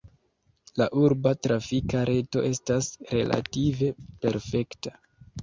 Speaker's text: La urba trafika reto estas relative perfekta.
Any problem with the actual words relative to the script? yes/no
no